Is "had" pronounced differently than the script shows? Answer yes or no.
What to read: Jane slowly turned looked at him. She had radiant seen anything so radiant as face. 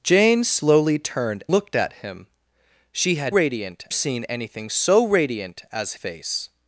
no